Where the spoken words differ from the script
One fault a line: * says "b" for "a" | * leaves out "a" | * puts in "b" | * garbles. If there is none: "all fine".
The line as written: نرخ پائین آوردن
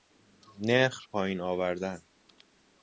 all fine